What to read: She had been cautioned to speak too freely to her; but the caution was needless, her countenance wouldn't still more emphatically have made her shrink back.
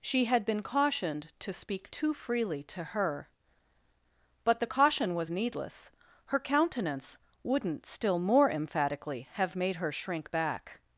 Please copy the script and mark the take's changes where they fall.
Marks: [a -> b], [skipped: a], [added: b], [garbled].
She had been cautioned to speak too freely to her; but the caution was needless, her countenance wouldn't still more emphatically have made her shrink back.